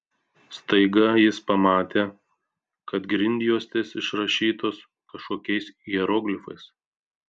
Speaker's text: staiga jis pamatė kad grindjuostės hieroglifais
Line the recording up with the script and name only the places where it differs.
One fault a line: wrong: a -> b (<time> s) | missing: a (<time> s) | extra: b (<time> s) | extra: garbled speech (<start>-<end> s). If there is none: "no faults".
extra: išrašytos kažkokiais (4.0 s)